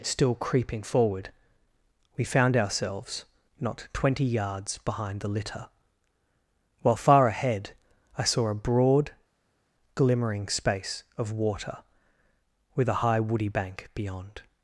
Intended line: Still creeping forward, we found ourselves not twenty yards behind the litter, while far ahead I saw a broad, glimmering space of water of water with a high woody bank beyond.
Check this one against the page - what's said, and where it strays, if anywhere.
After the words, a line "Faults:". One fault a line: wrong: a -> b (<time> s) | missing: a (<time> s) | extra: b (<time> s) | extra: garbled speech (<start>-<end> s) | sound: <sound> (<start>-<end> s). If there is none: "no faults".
Still creeping forward, we found ourselves not twenty yards behind the litter, while far ahead I saw a broad, glimmering space of water with a high woody bank beyond.
Faults:
missing: of water (11.8 s)